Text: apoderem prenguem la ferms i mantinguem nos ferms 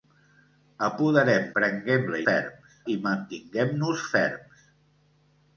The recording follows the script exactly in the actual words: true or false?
true